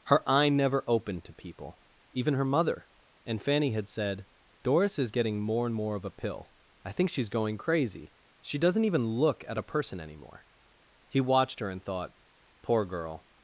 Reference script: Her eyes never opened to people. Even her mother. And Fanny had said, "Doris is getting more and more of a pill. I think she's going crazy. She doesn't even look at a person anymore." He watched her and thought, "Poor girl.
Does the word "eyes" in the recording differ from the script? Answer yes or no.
yes